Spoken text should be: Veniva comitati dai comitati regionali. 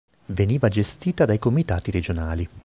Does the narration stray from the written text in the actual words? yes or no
yes